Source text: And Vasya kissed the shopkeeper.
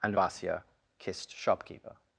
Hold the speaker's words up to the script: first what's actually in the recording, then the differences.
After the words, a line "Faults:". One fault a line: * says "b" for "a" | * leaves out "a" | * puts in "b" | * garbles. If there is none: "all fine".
And Vasya kissed shopkeeper.
Faults:
* leaves out "the"